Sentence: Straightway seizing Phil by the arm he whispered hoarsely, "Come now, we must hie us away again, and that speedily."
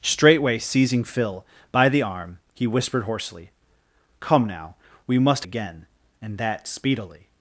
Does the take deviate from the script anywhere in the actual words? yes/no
yes